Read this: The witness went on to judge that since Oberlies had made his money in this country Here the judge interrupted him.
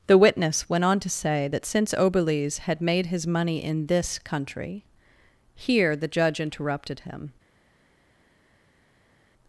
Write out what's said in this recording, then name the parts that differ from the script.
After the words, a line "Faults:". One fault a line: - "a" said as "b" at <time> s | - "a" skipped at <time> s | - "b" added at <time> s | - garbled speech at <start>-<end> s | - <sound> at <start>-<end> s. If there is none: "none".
The witness went on to say that since Oberlies had made his money in this country Here the judge interrupted him.
Faults:
- "judge" said as "say" at 1.1 s